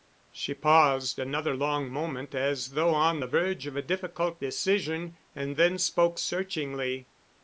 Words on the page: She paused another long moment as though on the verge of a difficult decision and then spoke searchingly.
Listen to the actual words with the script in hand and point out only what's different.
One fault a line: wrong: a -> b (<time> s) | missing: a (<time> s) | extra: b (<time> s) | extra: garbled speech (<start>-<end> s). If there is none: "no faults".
no faults